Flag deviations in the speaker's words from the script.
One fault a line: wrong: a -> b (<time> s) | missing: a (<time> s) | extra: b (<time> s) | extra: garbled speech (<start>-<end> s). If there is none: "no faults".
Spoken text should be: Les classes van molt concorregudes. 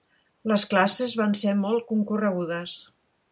extra: ser (1.4 s)